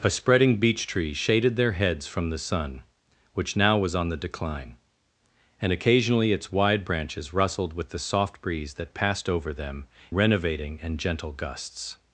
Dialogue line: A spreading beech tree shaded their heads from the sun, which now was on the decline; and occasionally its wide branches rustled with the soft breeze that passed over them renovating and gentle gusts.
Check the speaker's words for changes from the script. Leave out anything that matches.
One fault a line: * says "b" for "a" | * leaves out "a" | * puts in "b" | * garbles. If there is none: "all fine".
all fine